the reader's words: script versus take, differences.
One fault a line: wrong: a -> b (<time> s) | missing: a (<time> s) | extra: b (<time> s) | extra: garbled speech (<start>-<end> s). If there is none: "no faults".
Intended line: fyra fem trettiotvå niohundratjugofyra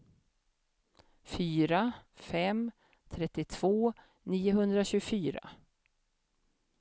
no faults